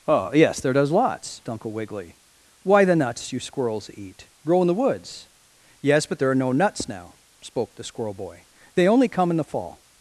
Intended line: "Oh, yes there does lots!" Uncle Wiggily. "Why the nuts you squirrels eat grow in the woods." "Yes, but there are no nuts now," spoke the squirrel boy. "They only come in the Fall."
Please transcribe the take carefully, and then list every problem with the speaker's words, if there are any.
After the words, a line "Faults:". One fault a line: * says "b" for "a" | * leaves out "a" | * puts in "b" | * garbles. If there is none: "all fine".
"Oh, yes there does lots!" Uncle Wiggily. "Why the nuts you squirrels eat grow in the woods." "Yes, but there are no nuts now," spoke the squirrel boy. "They only come in the Fall."
Faults:
all fine